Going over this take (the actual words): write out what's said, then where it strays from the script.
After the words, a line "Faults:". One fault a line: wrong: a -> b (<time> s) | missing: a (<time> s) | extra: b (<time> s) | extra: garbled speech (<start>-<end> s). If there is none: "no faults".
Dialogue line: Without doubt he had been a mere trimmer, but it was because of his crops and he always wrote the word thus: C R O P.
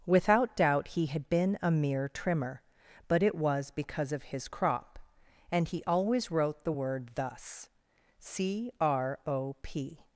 Without doubt he had been a mere trimmer, but it was because of his crop and he always wrote the word thus: C R O P.
Faults:
wrong: crops -> crop (4.5 s)